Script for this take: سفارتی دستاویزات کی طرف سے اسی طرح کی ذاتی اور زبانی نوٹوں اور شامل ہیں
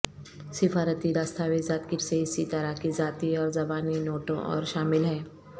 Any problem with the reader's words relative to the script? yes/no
yes